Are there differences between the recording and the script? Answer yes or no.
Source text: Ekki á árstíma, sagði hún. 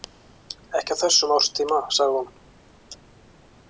yes